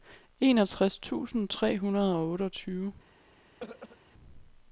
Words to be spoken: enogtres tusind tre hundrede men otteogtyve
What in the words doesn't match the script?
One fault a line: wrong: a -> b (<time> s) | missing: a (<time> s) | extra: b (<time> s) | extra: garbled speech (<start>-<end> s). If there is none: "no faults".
wrong: men -> og (2.1 s)